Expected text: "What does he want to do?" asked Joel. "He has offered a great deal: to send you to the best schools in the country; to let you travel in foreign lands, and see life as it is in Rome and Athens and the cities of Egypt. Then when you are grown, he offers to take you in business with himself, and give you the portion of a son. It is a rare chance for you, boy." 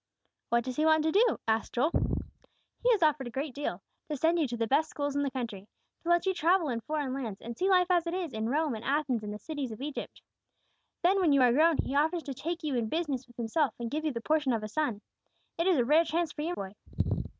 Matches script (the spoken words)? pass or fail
pass